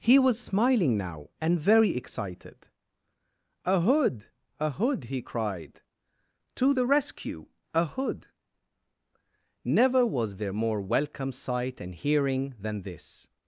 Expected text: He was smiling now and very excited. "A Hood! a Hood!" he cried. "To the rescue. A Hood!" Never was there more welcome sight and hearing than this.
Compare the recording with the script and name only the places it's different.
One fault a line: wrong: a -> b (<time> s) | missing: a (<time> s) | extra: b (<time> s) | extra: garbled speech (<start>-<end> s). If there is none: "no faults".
no faults